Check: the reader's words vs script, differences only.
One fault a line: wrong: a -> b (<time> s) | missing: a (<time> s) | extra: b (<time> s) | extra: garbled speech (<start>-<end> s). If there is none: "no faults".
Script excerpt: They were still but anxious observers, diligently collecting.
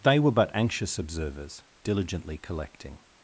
missing: still (0.3 s)